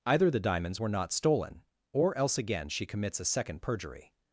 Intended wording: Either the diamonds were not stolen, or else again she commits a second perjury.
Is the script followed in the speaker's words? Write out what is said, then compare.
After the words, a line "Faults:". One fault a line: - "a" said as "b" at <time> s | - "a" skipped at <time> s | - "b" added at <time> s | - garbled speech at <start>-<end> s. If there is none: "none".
Either the diamonds were not stolen, or else again she commits a second perjury.
Faults:
none